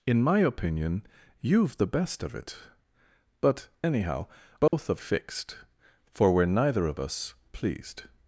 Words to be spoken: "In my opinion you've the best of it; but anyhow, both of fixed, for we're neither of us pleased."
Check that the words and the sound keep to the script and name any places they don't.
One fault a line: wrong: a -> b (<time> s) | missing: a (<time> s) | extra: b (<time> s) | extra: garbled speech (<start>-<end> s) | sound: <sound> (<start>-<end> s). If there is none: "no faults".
sound: dropout (4.7-4.7 s)